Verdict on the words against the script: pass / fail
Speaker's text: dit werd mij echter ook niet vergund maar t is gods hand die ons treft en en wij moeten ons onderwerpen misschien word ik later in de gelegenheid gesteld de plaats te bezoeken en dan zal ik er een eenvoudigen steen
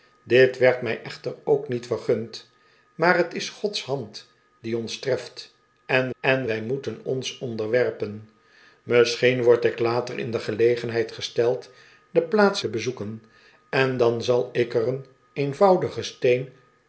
pass